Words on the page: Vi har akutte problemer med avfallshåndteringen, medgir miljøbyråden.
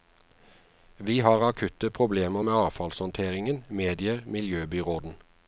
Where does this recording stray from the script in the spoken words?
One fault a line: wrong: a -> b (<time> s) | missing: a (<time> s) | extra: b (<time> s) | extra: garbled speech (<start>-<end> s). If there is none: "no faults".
no faults